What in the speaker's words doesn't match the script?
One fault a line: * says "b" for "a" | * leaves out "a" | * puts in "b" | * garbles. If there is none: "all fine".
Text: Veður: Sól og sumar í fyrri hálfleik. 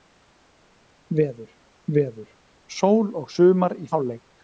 * puts in "veður"
* leaves out "fyrri"